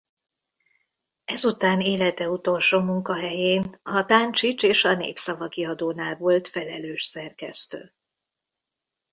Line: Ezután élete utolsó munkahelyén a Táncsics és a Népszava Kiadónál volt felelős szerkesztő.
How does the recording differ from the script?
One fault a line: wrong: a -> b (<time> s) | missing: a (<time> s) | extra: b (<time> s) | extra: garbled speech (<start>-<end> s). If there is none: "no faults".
no faults